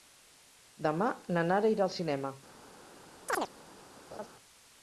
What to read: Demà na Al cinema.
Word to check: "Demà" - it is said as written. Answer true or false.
true